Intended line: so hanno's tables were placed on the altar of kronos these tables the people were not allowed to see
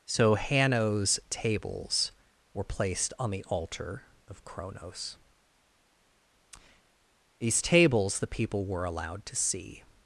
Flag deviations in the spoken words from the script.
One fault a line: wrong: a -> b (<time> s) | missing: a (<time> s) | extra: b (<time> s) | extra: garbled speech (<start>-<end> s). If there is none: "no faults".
missing: not (8.8 s)